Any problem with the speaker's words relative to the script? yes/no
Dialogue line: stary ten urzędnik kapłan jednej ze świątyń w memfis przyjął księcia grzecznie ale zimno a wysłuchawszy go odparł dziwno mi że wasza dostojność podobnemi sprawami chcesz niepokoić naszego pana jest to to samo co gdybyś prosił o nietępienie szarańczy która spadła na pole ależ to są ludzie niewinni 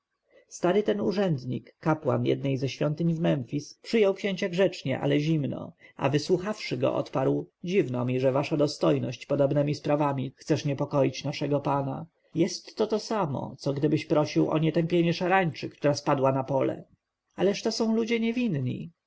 no